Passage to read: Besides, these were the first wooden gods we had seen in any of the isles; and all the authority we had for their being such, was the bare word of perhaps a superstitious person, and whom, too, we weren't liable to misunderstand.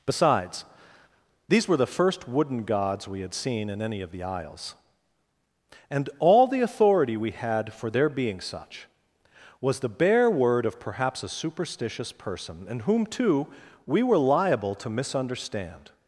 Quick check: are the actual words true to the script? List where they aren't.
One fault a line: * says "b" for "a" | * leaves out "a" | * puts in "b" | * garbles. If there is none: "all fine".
* says "were" for "weren't"